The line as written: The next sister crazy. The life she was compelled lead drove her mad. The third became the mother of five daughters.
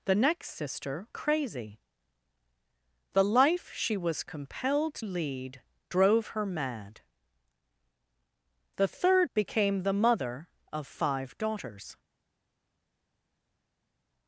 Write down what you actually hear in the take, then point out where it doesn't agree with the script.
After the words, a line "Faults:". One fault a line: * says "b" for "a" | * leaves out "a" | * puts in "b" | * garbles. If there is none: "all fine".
The next sister crazy. The life she was compelled lead drove her mad. The third became the mother of five daughters.
Faults:
all fine